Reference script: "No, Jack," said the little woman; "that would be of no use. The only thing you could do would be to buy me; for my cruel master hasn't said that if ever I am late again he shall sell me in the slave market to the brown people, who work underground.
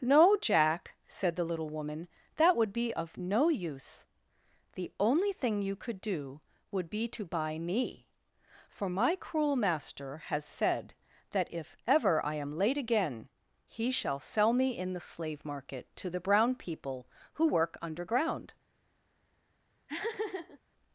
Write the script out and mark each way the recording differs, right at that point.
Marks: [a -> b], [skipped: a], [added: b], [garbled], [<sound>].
"No, Jack," said the little woman; "that would be of no use. The only thing you could do would be to buy me; for my cruel master [hasn't -> has] said that if ever I am late again he shall sell me in the slave market to the brown people, who work underground. [laugh]